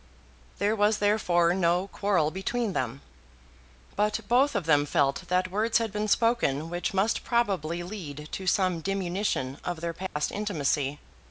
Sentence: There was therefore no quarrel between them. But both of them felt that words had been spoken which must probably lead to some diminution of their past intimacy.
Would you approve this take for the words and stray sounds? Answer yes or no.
no